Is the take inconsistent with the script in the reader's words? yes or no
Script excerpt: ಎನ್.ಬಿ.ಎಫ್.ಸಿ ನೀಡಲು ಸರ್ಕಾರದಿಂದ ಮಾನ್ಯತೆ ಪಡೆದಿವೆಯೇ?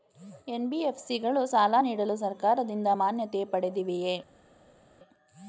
yes